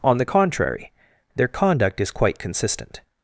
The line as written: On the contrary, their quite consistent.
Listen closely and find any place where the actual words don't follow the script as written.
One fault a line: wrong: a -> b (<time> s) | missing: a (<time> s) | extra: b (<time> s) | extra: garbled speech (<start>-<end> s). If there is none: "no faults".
extra: conduct is (1.5 s)